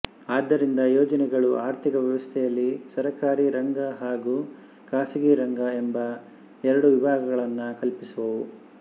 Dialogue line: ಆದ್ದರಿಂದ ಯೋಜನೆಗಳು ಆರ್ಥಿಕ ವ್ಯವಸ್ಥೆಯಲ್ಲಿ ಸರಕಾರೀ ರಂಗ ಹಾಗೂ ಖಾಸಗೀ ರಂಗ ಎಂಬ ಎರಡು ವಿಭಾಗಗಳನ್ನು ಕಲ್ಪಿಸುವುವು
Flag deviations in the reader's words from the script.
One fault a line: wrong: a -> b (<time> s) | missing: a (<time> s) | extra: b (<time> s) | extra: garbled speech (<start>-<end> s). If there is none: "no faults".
no faults